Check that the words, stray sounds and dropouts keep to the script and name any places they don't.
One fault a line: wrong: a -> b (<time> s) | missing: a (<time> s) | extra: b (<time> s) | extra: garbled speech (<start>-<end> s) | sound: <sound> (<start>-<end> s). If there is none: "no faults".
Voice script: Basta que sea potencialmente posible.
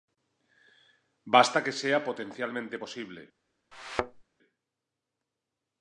sound: thud (3.7-4.2 s)